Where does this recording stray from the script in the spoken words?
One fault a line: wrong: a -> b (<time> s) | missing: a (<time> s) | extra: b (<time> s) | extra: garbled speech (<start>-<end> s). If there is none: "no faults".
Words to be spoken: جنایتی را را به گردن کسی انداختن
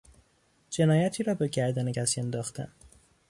missing: را (1.3 s)